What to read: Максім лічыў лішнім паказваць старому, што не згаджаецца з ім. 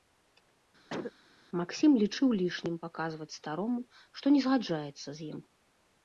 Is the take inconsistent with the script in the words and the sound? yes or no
yes